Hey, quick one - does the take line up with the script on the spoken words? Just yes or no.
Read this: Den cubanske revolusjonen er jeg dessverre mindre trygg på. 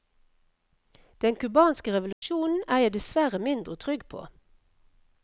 yes